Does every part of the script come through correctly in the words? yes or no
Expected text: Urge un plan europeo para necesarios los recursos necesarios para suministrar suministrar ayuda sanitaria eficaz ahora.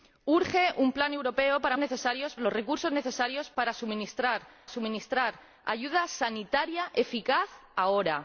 yes